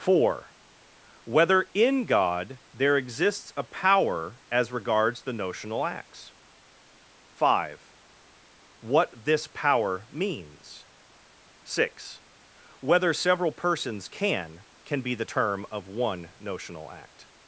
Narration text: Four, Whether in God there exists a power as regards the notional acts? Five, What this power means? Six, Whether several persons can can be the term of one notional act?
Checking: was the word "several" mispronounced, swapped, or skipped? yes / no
no